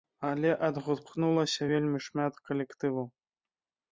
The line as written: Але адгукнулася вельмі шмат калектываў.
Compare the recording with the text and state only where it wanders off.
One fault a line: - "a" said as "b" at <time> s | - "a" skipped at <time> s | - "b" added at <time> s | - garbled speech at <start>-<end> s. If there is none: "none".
none